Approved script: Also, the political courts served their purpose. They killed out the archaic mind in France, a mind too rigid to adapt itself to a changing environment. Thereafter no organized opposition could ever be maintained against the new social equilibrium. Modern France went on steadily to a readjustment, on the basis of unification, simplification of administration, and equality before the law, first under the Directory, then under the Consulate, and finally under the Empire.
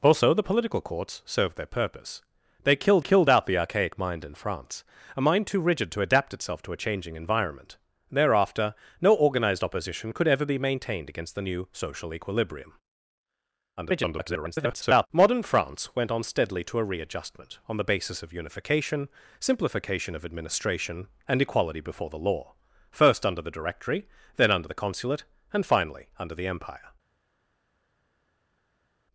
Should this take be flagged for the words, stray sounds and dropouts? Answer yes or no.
yes